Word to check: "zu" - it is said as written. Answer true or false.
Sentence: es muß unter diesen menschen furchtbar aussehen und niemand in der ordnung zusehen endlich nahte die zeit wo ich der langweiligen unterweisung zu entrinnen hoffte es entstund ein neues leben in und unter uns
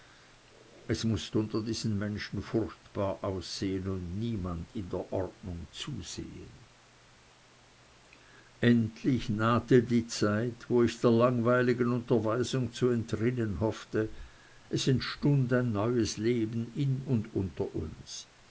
true